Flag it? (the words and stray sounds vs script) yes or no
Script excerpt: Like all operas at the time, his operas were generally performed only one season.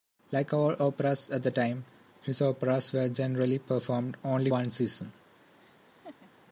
yes